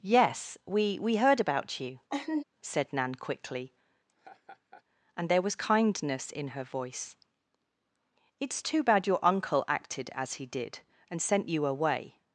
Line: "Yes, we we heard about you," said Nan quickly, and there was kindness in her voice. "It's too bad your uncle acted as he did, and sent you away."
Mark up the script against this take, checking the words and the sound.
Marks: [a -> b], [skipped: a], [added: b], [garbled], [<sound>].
"Yes, we we heard about you," [laugh] said Nan quickly, [laugh] and there was kindness in her voice. "It's too bad your uncle acted as he did, and sent you away."